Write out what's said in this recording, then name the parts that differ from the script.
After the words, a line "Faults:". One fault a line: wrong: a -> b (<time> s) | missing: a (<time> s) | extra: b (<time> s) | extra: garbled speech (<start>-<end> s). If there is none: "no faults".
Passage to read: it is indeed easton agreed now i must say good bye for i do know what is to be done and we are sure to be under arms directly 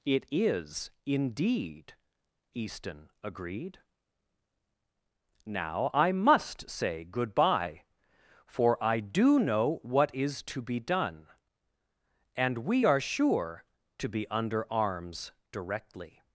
it is indeed easton agreed now i must say good bye for i do know what is to be done and we are sure to be under arms directly
Faults:
no faults